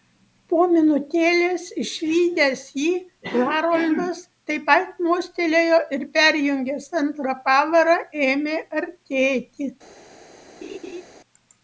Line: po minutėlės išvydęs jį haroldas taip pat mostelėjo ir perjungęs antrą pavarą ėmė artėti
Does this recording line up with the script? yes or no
yes